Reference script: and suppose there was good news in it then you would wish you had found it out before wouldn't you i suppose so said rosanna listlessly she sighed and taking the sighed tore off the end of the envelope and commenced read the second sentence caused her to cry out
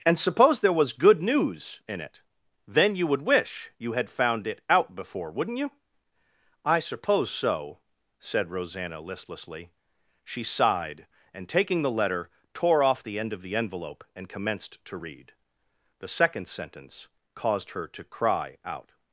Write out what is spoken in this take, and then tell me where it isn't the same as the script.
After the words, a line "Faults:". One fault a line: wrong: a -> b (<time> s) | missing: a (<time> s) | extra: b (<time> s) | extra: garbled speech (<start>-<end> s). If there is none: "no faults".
and suppose there was good news in it then you would wish you had found it out before wouldn't you i suppose so said rosanna listlessly she sighed and taking the letter tore off the end of the envelope and commenced to read the second sentence caused her to cry out
Faults:
wrong: sighed -> letter (11.9 s)
extra: to (14.8 s)